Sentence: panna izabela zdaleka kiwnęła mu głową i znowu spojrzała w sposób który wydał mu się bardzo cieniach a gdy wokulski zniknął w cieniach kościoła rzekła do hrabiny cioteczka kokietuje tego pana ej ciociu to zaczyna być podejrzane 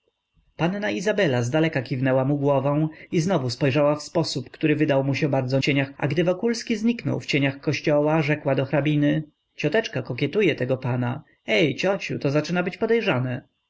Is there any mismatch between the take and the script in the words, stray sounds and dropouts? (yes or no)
no